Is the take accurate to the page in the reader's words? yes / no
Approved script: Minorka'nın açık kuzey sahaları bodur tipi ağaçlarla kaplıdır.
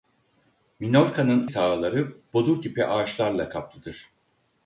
no